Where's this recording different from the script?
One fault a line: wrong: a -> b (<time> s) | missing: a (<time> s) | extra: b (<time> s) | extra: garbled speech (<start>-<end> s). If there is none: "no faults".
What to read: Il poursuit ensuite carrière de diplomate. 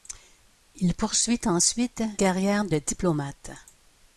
no faults